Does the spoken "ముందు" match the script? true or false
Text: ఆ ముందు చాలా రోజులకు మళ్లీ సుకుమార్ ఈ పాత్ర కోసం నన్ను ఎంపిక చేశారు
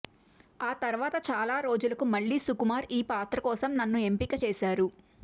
false